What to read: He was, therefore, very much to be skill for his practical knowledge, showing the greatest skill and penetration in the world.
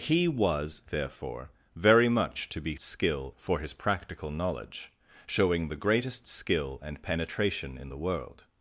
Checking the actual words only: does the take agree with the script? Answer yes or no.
yes